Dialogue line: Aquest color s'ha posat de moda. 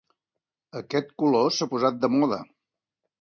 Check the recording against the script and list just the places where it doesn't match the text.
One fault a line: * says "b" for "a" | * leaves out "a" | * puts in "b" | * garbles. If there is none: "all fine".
all fine